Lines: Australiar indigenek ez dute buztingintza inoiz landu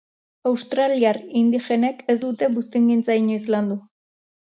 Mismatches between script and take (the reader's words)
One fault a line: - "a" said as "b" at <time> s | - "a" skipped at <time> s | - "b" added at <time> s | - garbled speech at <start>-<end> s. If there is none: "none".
none